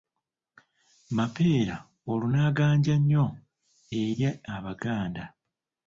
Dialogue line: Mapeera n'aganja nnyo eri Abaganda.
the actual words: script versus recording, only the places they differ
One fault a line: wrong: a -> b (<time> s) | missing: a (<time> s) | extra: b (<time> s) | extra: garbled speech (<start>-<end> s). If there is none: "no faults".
extra: olwo (2.1 s)